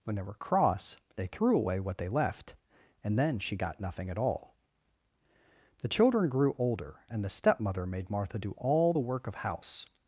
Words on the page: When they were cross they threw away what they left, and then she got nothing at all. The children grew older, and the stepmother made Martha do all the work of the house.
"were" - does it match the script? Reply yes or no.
yes